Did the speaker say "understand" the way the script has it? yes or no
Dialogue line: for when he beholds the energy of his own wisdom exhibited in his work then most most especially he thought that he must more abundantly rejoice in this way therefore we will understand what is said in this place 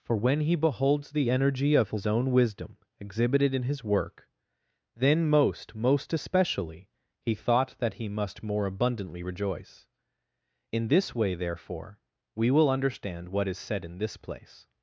yes